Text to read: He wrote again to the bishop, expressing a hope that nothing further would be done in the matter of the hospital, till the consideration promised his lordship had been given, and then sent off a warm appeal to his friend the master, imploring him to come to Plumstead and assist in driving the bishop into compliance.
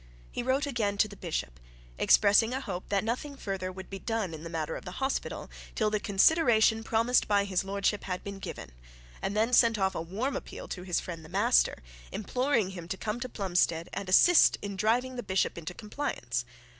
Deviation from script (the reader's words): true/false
true